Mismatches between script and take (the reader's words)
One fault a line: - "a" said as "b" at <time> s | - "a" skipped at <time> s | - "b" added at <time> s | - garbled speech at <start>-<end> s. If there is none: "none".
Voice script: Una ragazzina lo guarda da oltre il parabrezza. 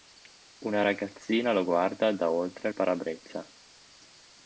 none